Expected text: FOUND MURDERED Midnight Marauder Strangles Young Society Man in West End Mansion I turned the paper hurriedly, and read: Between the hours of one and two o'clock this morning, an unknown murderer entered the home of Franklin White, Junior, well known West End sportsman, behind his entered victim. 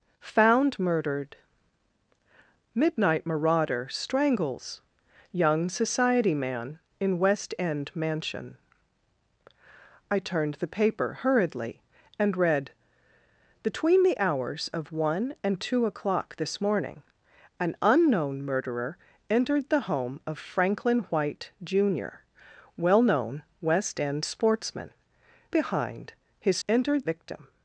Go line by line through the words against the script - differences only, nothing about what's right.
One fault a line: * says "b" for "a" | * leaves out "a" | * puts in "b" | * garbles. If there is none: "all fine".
all fine